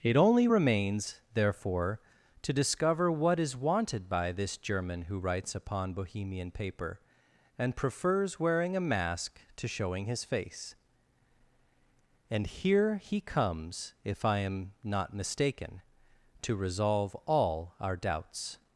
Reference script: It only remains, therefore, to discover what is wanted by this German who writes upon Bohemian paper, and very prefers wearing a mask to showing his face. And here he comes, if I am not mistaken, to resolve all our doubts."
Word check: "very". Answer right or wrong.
wrong